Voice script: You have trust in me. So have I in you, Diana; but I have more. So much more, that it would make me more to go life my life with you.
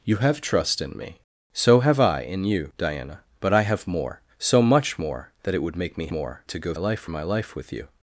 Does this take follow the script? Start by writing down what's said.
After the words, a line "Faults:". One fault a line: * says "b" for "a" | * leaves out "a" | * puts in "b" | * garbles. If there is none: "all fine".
You have trust in me. So have I in you, Diana; but I have more. So much more, that it would make me more to go life my life with you.
Faults:
all fine